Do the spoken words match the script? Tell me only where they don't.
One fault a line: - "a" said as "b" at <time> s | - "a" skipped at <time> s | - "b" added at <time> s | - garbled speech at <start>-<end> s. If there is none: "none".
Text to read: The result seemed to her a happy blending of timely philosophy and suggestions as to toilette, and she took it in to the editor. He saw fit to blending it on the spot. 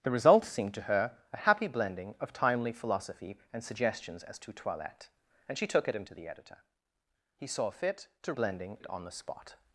none